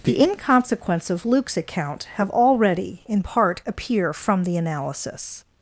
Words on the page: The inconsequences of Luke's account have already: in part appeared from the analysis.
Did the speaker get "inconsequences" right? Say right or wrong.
wrong